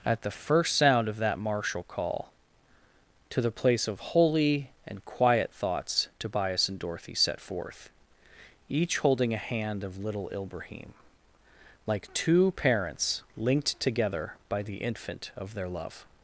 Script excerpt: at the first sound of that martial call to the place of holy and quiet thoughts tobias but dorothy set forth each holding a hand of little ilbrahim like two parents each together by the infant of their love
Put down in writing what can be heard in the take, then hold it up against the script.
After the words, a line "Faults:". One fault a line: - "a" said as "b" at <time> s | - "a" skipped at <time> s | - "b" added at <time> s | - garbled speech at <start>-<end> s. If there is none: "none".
at the first sound of that martial call to the place of holy and quiet thoughts tobias and dorothy set forth each holding a hand of little ilbrahim like two parents linked together by the infant of their love
Faults:
- "but" said as "and" at 6.7 s
- "each" said as "linked" at 13.4 s